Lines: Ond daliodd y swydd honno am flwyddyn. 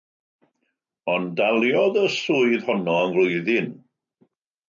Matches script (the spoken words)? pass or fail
pass